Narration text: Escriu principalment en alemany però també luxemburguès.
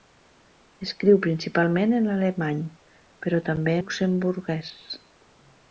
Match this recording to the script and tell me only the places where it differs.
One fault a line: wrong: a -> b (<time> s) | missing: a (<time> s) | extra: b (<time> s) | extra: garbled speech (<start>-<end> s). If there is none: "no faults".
no faults